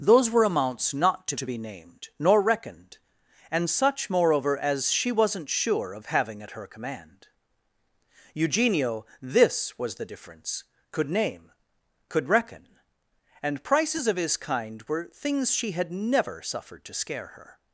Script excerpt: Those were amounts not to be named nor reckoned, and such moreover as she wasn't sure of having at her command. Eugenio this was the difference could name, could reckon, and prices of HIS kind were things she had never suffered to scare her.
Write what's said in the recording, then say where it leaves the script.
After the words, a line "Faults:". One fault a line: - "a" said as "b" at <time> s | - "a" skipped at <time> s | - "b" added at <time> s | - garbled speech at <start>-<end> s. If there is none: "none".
Those were amounts not to to be named nor reckoned, and such moreover as she wasn't sure of having at her command. Eugenio this was the difference could name, could reckon, and prices of HIS kind were things she had never suffered to scare her.
Faults:
- "to" added at 1.4 s